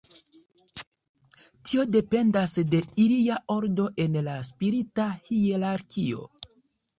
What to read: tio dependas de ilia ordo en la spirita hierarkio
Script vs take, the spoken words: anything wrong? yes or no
no